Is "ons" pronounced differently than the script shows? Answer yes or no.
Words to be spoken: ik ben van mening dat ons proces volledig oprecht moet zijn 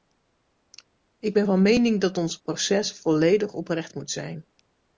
no